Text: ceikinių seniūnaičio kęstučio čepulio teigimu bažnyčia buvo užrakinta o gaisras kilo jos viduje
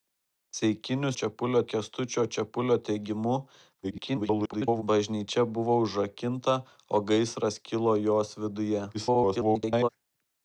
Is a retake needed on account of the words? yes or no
yes